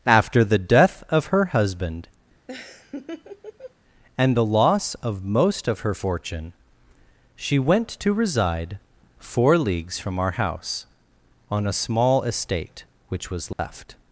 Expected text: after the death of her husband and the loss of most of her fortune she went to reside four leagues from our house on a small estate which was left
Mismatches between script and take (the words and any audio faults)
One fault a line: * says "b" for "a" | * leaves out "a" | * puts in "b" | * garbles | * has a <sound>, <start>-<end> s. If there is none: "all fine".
* has a laugh, 2.5-3.7 s
* has a dropout, 13.5-13.6 s